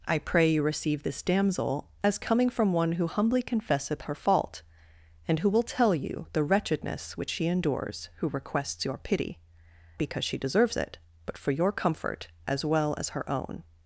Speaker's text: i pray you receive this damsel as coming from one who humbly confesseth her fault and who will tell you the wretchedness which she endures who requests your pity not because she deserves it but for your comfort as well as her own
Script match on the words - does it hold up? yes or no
no